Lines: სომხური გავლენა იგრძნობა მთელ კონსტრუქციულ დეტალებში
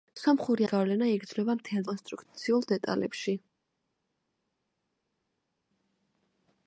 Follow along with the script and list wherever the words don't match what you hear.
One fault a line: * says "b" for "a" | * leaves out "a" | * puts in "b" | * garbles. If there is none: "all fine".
all fine